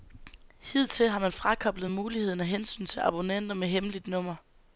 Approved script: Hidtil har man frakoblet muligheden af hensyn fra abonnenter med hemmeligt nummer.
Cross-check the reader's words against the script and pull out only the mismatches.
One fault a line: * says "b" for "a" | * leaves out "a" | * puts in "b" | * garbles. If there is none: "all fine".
* says "til" for "fra"